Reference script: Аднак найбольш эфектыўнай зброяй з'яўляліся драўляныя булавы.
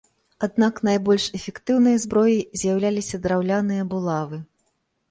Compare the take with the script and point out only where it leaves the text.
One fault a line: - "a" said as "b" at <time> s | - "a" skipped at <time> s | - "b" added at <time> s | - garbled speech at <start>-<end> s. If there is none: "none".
none